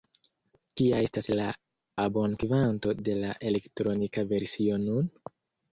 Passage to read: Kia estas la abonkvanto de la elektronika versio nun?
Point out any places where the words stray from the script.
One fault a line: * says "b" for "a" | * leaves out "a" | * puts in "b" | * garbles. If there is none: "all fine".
all fine